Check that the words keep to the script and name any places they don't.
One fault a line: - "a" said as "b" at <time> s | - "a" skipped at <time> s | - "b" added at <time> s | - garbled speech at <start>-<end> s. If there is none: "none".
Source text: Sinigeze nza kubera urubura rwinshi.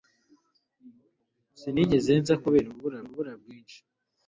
- "urubura" added at 3.0 s